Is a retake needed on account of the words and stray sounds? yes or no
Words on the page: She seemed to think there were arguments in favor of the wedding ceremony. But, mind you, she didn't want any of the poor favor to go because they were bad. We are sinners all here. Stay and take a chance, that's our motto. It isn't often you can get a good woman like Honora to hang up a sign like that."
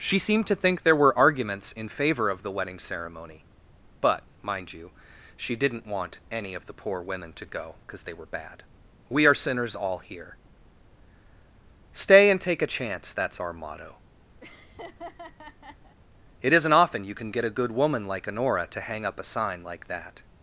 yes